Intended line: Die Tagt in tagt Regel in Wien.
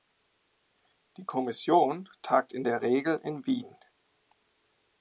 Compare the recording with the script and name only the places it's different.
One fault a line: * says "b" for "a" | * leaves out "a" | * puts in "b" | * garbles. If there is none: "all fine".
* puts in "Kommission"
* says "der" for "tagt"